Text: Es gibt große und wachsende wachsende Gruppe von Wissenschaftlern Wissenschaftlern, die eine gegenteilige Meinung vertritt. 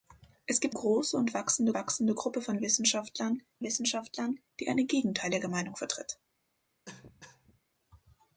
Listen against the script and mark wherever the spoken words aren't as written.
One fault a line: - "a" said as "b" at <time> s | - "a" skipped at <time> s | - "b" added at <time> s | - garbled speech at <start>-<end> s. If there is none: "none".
none